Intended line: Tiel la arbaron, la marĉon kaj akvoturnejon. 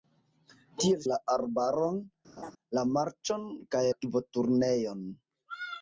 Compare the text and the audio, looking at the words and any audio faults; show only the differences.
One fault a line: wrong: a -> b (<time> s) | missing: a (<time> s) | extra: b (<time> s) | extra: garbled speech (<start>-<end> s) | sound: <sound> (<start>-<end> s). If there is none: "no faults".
sound: laugh (2.4-2.5 s)